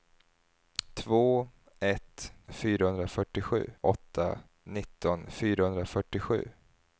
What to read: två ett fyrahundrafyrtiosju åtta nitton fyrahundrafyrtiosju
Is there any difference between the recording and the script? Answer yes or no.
no